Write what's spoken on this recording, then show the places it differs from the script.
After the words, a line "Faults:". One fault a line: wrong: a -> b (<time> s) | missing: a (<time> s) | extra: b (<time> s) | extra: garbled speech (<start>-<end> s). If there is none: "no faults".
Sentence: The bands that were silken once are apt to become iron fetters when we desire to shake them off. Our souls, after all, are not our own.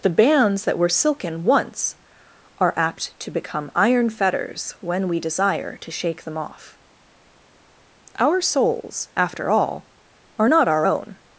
The bands that were silken once are apt to become iron fetters when we desire to shake them off. Our souls, after all, are not our own.
Faults:
no faults